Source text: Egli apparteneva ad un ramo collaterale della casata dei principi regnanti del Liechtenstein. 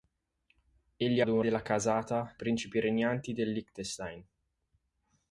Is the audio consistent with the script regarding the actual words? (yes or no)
no